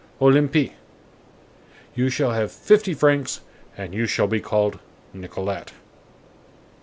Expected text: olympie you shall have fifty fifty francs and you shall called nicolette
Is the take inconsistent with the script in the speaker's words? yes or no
yes